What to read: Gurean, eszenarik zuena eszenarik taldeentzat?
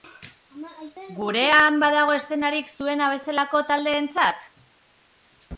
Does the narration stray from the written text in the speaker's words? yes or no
yes